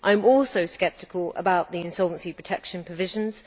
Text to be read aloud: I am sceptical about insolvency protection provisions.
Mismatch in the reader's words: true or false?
true